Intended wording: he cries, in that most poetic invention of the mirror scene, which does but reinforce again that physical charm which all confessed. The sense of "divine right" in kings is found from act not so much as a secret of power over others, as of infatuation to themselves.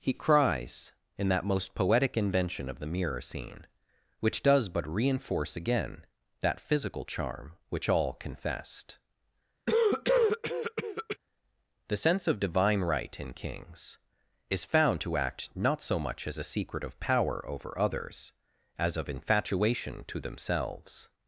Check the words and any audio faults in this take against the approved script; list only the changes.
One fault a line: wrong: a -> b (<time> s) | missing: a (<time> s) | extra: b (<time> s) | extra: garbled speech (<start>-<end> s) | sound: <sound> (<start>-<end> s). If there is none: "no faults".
sound: cough (9.7-11.2 s)
wrong: from -> to (15.0 s)